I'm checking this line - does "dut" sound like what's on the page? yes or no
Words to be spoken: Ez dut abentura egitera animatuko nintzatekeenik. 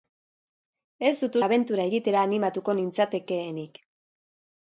yes